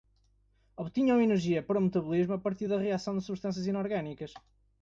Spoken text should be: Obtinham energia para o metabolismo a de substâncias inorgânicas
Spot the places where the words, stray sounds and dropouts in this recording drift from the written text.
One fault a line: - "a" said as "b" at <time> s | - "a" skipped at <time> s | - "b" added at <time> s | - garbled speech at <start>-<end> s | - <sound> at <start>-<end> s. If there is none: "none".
- "partir da reação" added at 2.4 s